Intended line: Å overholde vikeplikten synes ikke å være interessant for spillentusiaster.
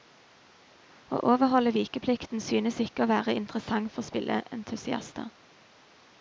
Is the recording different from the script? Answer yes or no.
no